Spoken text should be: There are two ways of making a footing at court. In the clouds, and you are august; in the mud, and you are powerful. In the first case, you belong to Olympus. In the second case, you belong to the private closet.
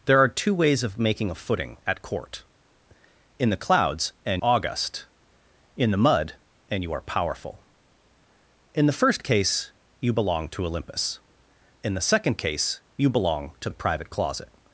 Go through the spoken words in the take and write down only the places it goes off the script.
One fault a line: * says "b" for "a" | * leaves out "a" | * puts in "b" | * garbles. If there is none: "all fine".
* leaves out "you are"